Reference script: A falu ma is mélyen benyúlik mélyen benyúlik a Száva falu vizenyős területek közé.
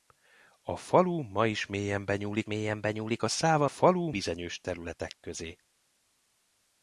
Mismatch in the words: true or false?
false